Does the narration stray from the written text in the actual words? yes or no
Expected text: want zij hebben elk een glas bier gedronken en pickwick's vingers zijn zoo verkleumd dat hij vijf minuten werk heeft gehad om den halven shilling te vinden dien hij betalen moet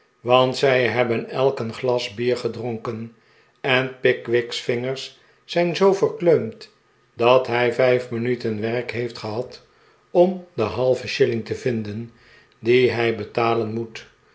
no